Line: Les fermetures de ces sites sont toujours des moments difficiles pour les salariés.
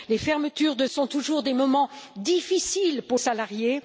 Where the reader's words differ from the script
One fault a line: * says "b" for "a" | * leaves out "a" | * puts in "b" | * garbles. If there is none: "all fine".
* leaves out "ces sites"
* leaves out "les"